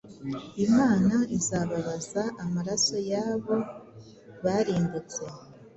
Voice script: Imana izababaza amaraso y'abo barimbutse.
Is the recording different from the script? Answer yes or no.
no